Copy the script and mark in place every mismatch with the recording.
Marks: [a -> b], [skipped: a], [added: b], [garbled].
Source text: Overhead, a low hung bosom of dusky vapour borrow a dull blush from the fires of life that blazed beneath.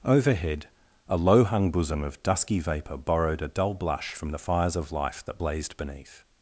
Overhead, a low hung bosom of dusky vapour [borrow -> borrowed] a dull blush from the fires of life that blazed beneath.